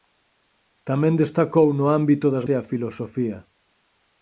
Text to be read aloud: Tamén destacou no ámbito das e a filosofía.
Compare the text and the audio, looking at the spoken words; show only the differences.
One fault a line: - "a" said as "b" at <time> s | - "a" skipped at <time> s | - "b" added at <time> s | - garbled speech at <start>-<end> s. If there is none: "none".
none